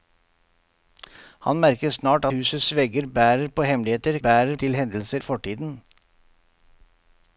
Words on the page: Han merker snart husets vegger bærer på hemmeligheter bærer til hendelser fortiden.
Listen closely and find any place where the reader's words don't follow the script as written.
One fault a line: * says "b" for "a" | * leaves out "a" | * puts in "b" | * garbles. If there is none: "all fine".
all fine